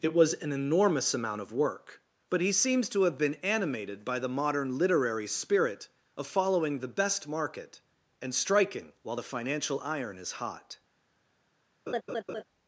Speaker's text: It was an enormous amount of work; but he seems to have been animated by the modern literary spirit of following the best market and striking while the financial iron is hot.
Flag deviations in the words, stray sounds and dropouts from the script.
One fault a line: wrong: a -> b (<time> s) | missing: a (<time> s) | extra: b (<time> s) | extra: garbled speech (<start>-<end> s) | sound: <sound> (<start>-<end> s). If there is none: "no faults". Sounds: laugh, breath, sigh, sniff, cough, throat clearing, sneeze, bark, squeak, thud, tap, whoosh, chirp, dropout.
sound: laugh (11.9-12.4 s)